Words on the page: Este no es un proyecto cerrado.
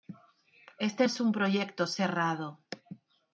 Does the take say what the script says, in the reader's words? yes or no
no